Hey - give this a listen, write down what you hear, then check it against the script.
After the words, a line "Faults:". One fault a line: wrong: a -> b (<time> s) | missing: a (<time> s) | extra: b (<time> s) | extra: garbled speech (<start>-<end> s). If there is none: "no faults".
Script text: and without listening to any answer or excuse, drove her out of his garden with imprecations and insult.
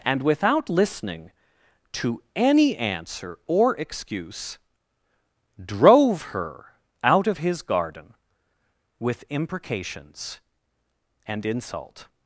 and without listening to any answer or excuse, drove her out of his garden with imprecations and insult.
Faults:
no faults